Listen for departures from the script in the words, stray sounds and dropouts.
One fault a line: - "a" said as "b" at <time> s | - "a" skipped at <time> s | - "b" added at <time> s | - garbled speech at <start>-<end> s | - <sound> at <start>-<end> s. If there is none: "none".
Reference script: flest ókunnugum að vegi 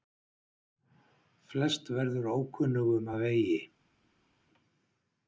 - "verður" added at 2.0 s